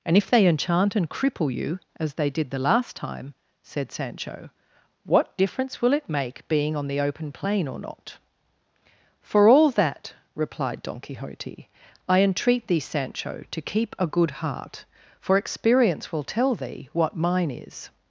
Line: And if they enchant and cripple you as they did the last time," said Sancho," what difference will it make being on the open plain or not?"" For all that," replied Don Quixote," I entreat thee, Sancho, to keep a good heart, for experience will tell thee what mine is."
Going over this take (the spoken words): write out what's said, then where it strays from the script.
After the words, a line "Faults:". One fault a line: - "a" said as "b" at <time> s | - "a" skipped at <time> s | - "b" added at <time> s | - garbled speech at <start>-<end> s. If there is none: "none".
And if they enchant and cripple you as they did the last time," said Sancho," what difference will it make being on the open plain or not?"" For all that," replied Don Quixote," I entreat thee, Sancho, to keep a good heart, for experience will tell thee what mine is."
Faults:
none